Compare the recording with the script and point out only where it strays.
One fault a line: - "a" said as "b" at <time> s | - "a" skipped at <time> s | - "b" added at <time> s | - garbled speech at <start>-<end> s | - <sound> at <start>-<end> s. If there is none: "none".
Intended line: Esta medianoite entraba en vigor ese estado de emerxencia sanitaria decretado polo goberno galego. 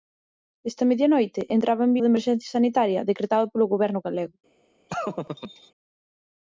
- "vigor ese estado" skipped at 1.9 s
- laugh at 4.9-5.7 s